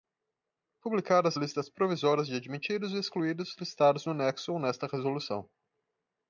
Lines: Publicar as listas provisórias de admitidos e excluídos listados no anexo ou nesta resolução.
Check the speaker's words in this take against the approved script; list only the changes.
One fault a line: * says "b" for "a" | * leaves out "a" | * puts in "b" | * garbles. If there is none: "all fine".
all fine